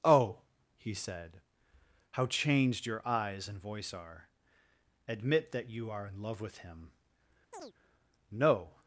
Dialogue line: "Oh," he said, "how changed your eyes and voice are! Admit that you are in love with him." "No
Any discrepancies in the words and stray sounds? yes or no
yes